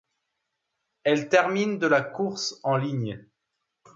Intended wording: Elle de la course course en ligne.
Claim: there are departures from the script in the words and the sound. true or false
true